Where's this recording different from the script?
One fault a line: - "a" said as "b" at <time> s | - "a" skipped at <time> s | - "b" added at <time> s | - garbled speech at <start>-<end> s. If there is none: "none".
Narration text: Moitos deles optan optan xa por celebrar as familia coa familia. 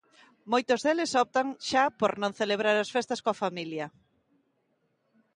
- "optan" skipped at 1.5 s
- "non" added at 2.2 s
- "familia" said as "festas" at 3.0 s